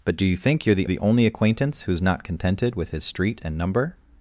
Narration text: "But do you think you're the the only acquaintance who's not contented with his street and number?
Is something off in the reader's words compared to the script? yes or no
no